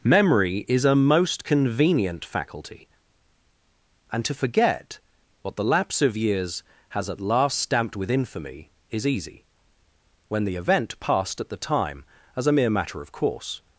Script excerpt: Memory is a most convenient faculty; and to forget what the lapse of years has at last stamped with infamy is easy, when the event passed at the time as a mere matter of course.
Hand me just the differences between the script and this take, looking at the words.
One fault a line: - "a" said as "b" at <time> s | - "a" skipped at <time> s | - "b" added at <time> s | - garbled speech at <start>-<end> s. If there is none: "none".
none